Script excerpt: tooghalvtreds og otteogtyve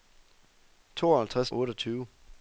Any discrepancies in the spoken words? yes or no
no